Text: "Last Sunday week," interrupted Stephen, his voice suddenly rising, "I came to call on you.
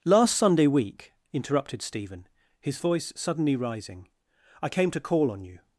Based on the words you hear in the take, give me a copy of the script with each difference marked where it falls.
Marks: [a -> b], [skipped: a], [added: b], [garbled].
"Last Sunday week," interrupted Stephen, his voice suddenly rising, "I came to call on you.